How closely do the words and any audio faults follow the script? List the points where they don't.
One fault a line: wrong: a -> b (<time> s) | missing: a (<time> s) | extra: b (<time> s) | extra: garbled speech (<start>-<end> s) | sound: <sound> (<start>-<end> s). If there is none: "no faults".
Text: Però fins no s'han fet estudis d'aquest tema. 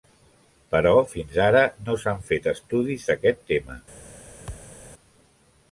extra: ara (1.5 s)
sound: thud (4.5-4.8 s)